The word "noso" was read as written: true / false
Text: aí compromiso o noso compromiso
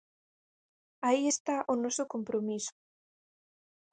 true